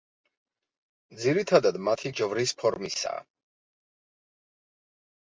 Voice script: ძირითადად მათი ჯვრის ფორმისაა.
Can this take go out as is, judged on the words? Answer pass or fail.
pass